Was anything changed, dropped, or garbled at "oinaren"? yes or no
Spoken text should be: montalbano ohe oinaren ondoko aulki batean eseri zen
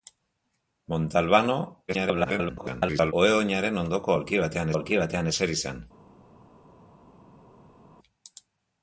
no